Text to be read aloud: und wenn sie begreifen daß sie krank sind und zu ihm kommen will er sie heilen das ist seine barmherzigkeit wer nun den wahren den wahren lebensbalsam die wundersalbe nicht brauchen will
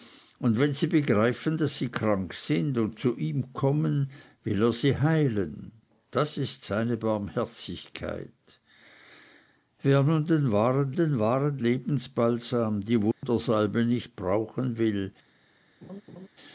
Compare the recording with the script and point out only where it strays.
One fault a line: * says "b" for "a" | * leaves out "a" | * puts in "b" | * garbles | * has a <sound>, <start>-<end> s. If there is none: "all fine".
* has a dropout, 13.1-13.2 s
* has a laugh, 15.8-16.3 s